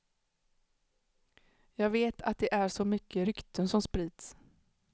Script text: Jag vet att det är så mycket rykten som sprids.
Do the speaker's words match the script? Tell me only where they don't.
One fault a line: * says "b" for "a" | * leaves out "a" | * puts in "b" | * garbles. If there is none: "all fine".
all fine